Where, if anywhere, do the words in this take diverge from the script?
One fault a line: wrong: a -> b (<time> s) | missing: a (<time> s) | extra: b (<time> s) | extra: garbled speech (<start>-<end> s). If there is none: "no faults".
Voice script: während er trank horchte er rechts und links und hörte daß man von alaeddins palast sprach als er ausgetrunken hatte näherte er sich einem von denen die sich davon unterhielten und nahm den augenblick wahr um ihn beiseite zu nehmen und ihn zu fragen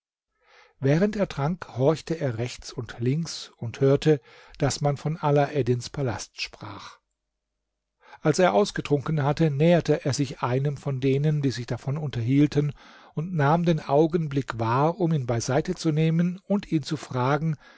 no faults